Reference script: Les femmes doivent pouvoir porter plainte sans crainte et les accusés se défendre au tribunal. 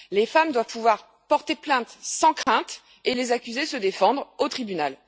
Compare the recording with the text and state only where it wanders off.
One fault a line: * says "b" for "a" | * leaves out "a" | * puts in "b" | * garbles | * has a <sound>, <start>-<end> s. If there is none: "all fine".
* has a dropout, 2.4-2.5 s